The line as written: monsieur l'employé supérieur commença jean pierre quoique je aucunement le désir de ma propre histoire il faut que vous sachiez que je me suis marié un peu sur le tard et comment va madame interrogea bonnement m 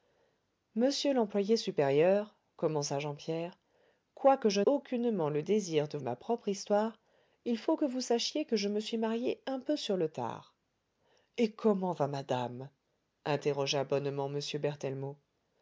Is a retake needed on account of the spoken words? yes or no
no